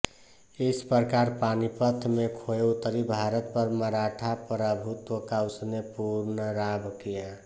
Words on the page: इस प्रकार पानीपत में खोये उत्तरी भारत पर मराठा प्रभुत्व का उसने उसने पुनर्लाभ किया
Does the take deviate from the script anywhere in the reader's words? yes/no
yes